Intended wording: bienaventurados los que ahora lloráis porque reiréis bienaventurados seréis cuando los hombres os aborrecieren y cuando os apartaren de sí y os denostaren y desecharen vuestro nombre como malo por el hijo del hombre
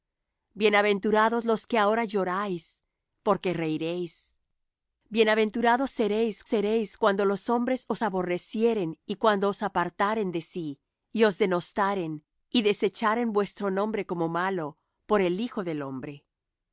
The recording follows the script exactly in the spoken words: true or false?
false